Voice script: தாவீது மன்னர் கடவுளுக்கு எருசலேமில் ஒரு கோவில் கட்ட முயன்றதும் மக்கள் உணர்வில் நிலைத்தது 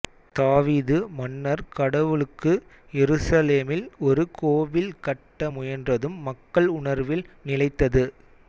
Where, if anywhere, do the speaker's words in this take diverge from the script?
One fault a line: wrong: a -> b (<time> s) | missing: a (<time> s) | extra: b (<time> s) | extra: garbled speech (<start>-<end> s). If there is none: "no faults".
no faults